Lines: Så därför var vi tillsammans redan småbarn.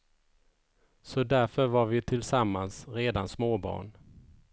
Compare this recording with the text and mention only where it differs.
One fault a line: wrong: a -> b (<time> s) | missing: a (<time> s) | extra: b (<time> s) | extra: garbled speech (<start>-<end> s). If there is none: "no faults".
no faults